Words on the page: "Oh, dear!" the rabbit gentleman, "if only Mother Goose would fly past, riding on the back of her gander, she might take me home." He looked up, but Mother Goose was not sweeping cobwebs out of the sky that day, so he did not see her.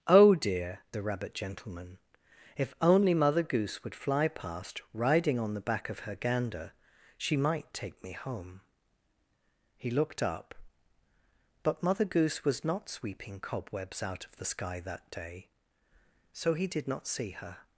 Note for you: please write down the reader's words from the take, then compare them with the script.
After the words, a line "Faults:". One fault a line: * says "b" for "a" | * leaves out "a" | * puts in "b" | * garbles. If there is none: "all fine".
"Oh, dear!" the rabbit gentleman, "if only Mother Goose would fly past, riding on the back of her gander, she might take me home." He looked up, but Mother Goose was not sweeping cobwebs out of the sky that day, so he did not see her.
Faults:
all fine